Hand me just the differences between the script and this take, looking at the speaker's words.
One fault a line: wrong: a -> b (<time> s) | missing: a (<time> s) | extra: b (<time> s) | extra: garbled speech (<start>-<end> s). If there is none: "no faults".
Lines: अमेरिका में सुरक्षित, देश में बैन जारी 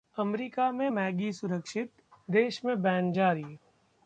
extra: मैगी (0.9 s)